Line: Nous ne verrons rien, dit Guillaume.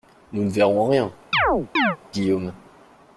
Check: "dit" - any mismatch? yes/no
yes